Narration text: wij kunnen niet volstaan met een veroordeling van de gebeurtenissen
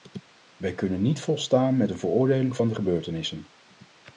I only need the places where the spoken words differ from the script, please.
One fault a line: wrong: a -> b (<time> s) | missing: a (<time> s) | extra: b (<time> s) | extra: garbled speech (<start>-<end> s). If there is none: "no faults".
no faults